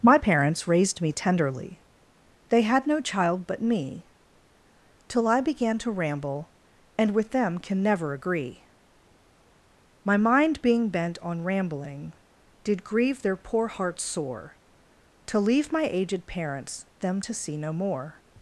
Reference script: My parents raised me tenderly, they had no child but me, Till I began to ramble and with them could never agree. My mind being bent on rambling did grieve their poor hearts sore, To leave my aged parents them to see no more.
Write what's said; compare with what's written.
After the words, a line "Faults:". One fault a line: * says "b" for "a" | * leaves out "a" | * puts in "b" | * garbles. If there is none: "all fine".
My parents raised me tenderly, they had no child but me, Till I began to ramble and with them can never agree. My mind being bent on rambling did grieve their poor hearts sore, To leave my aged parents them to see no more.
Faults:
* says "can" for "could"